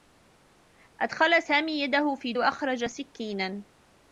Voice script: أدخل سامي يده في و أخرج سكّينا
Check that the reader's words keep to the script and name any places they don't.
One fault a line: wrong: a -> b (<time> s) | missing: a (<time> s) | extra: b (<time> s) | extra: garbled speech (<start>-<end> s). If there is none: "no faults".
no faults